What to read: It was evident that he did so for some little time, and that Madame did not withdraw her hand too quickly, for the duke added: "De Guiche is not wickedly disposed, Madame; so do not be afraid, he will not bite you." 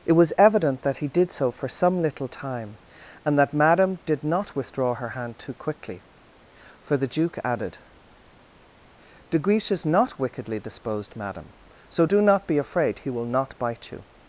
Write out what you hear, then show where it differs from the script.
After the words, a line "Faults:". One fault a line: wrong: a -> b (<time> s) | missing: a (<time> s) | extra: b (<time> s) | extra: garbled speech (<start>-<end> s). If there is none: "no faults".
It was evident that he did so for some little time, and that Madame did not withdraw her hand too quickly, for the duke added: "De Guiche is not wickedly disposed, Madame; so do not be afraid, he will not bite you."
Faults:
no faults